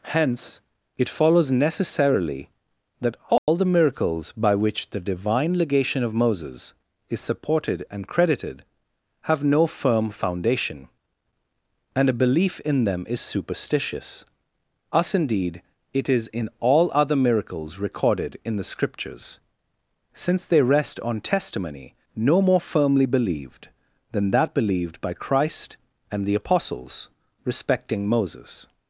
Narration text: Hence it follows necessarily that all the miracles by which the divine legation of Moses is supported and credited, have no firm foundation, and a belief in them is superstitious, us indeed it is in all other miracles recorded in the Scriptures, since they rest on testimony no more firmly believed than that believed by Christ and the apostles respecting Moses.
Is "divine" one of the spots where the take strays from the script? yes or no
no